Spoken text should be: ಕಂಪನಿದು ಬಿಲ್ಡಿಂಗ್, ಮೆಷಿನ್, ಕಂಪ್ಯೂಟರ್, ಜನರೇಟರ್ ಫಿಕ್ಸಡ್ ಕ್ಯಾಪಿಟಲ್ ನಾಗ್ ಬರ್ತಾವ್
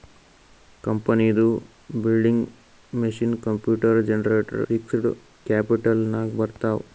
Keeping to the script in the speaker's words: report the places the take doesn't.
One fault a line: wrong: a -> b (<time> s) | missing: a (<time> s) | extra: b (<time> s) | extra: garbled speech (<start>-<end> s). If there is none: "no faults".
no faults